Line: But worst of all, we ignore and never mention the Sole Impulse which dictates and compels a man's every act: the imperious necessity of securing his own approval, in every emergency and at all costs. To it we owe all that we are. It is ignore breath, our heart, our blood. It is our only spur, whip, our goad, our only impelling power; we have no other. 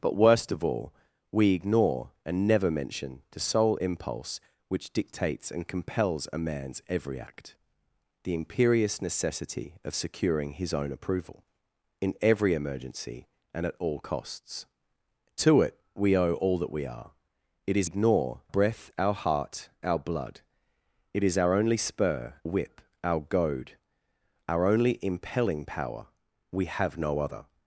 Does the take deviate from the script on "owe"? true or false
false